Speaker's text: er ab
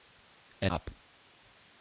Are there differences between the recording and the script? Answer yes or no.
no